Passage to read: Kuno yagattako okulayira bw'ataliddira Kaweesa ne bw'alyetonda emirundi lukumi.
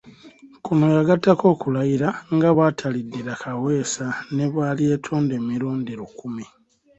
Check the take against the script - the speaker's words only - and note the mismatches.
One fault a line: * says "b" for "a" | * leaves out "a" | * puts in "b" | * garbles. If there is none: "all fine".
* puts in "nga"